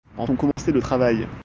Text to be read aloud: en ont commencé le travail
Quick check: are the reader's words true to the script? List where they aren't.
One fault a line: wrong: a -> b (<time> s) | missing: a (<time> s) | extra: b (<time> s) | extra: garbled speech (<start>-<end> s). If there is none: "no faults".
no faults